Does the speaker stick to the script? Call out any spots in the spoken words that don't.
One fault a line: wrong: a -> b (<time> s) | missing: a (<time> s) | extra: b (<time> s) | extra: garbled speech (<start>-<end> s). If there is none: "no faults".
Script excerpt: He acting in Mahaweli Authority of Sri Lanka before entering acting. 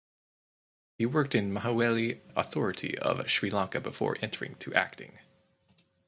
wrong: acting -> worked (1.1 s)
extra: to (4.5 s)